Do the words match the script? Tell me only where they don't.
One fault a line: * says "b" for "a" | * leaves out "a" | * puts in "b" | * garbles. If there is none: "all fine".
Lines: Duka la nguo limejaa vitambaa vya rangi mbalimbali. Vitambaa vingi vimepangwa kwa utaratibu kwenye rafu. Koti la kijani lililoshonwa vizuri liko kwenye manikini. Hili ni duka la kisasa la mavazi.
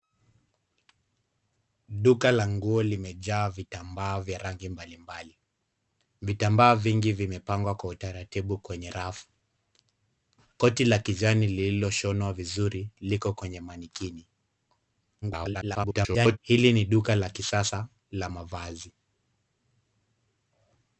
* garbles